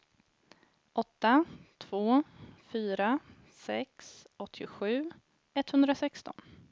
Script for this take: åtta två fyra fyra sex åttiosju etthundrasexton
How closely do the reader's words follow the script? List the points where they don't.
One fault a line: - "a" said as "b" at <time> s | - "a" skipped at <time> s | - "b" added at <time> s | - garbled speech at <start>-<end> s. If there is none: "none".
- "fyra" skipped at 3.2 s